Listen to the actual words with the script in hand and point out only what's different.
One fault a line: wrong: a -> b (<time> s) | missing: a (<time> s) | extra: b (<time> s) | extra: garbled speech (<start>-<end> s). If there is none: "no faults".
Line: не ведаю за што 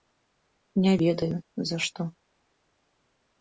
no faults